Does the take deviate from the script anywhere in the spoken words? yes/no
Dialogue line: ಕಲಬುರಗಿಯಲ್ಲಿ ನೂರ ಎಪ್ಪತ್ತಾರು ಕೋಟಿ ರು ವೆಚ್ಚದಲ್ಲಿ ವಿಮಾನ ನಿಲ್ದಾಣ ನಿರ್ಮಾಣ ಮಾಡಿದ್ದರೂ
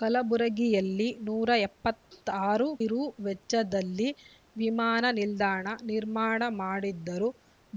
yes